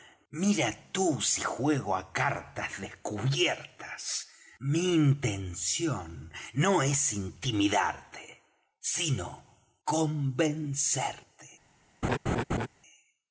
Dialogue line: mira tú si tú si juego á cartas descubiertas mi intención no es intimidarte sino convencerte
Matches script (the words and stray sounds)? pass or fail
fail